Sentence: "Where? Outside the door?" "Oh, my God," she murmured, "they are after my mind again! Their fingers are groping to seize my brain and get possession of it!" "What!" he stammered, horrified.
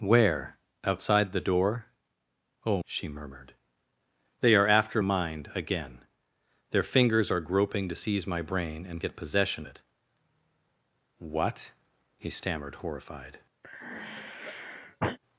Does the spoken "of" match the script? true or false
false